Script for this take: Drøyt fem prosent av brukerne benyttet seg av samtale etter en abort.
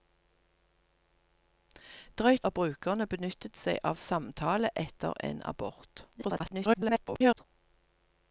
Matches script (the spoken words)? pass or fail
fail